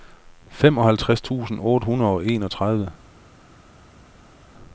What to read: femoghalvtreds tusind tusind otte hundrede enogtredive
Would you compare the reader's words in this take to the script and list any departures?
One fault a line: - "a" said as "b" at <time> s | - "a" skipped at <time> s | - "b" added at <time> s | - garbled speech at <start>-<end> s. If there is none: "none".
- "tusind" skipped at 1.6 s
- "og" added at 2.1 s